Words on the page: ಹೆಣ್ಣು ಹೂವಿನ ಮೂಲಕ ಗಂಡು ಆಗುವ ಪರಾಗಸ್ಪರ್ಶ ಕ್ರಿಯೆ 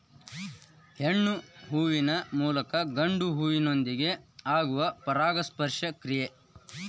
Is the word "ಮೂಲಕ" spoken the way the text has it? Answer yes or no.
yes